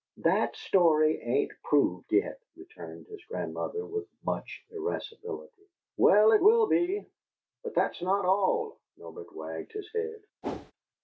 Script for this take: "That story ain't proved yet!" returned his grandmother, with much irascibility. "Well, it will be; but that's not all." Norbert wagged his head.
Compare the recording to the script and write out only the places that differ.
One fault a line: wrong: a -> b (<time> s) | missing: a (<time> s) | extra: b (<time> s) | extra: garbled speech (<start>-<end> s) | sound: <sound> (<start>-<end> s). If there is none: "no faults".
sound: whoosh (10.4-10.7 s)